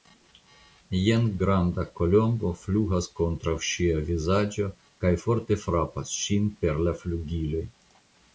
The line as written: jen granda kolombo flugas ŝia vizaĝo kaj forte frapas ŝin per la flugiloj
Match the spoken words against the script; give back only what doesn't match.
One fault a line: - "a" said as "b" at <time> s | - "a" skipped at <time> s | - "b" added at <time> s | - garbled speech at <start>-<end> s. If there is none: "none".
- "kontraŭ" added at 3.2 s